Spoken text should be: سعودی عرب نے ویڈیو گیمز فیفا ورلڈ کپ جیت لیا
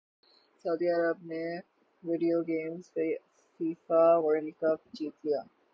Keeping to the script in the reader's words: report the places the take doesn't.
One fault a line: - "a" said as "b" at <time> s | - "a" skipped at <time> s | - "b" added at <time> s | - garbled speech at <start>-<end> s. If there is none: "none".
none